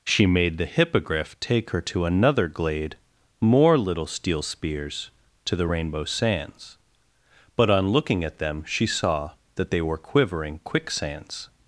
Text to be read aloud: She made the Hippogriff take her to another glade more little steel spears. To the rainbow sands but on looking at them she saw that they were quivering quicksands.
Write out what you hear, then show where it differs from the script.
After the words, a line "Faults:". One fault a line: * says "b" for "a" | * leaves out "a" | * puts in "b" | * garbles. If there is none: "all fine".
She made the Hippogriff take her to another glade more little steel spears. To the rainbow sands but on looking at them she saw that they were quivering quicksands.
Faults:
all fine